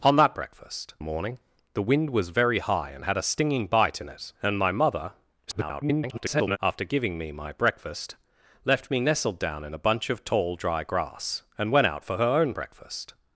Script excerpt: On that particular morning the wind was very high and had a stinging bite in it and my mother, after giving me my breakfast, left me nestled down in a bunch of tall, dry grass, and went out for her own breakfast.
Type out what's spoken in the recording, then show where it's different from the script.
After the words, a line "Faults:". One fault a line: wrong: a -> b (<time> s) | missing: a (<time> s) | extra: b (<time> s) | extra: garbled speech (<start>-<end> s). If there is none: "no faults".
On that breakfast morning the wind was very high and had a stinging bite in it and my mother, [garbled] after giving me my breakfast, left me nestled down in a bunch of tall, dry grass, and went out for her own breakfast.
Faults:
wrong: particular -> breakfast (0.3 s)
extra: garbled speech (5.5-6.6 s)